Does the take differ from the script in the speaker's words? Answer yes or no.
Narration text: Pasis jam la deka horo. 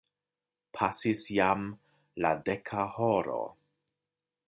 no